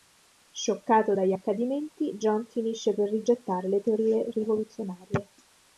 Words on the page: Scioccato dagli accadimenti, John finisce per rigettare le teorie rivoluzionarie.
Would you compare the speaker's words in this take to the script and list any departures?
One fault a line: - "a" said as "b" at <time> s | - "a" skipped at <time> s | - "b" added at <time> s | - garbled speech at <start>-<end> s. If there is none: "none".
none